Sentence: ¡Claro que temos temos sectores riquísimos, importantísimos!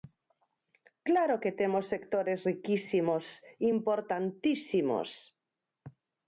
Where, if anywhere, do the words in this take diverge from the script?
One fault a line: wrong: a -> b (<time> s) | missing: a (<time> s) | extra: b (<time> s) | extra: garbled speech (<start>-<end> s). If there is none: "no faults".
missing: temos (1.9 s)